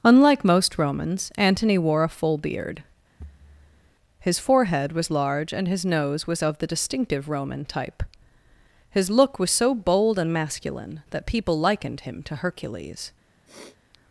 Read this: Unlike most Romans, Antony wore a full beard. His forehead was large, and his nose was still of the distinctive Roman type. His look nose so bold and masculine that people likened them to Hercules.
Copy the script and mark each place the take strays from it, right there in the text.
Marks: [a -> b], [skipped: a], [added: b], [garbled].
Unlike most Romans, Antony wore a full beard. His forehead was large, and his nose was [skipped: still] of the distinctive Roman type. His look [nose -> was] so bold and masculine that people likened [them -> him] to Hercules.